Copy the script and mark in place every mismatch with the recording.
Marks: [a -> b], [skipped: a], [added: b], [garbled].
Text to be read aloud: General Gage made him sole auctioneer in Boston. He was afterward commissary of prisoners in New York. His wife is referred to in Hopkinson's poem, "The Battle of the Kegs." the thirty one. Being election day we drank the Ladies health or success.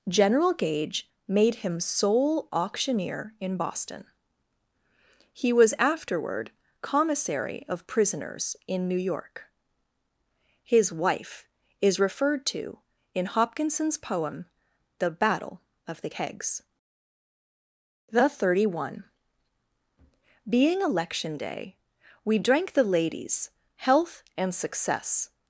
General Gage made him sole auctioneer in Boston. He was afterward commissary of prisoners in New York. His wife is referred to in Hopkinson's poem, "The Battle of the Kegs." the thirty one. Being election day we drank the Ladies health [or -> and] success.